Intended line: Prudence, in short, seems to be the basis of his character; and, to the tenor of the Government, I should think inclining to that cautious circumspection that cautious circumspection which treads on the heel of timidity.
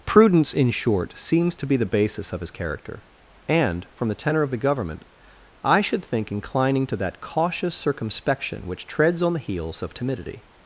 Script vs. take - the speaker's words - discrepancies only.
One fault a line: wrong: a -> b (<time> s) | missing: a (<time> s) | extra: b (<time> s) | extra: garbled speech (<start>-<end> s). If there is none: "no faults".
wrong: to -> from (3.9 s)
missing: that cautious circumspection (8.7 s)
wrong: heel -> heels (9.4 s)